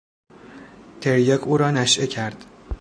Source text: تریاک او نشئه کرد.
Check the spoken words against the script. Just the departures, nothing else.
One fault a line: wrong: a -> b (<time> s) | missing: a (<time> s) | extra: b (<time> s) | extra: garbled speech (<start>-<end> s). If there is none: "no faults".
extra: را (1.6 s)